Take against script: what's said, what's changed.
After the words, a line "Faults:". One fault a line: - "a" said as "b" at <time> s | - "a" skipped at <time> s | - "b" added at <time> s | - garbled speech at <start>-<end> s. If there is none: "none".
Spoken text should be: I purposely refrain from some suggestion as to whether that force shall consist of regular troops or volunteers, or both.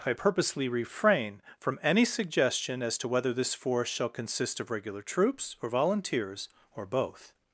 I purposely refrain from any suggestion as to whether this force shall consist of regular troops or volunteers, or both.
Faults:
- "some" said as "any" at 1.8 s
- "that" said as "this" at 3.3 s